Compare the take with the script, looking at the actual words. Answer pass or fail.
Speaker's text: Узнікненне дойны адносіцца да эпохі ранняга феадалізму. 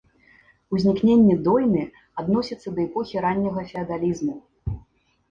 pass